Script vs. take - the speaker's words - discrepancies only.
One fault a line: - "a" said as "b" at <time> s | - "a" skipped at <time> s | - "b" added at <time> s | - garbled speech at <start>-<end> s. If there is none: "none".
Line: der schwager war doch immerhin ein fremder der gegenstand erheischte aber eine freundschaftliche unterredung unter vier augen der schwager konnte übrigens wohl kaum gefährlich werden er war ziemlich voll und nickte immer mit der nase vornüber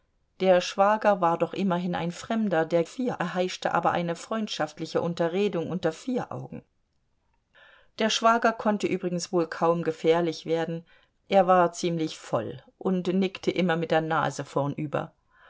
- "gegenstand" said as "vier" at 2.8 s